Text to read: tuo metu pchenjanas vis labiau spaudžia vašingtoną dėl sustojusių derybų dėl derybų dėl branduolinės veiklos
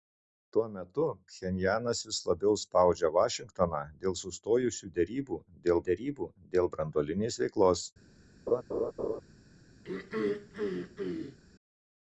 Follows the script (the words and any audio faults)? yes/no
no